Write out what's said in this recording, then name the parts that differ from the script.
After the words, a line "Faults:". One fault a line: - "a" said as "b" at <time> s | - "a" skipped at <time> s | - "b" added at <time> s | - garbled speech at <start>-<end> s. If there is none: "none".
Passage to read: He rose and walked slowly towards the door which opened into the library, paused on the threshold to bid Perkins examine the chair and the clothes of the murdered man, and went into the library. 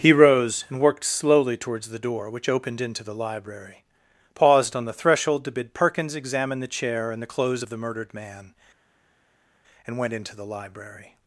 He rose and worked slowly towards the door which opened into the library, paused on the threshold to bid Perkins examine the chair and the clothes of the murdered man, and went into the library.
Faults:
- "walked" said as "worked" at 0.8 s